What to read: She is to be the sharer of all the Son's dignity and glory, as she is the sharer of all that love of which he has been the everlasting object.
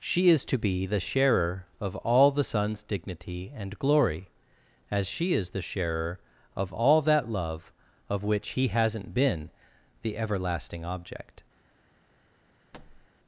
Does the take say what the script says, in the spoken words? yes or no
no